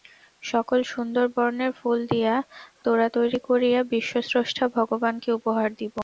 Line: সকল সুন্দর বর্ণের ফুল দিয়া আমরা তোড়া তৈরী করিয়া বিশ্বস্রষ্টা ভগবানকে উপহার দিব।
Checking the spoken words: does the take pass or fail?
fail